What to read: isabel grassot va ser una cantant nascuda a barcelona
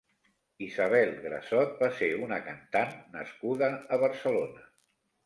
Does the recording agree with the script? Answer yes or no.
yes